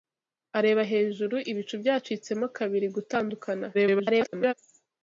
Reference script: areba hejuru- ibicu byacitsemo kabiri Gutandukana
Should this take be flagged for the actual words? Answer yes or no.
yes